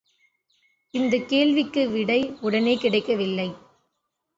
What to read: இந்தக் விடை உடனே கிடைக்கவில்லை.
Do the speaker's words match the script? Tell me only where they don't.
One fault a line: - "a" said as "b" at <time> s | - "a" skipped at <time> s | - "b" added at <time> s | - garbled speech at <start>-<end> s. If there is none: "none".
- "கேள்விக்கு" added at 1.3 s